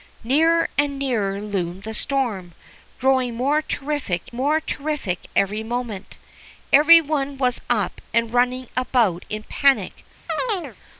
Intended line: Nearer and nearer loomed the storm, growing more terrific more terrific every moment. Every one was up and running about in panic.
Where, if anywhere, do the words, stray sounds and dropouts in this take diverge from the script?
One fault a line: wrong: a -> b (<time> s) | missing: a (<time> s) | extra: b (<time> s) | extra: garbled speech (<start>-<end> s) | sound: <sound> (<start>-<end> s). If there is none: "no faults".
sound: chirp (10.3-10.8 s)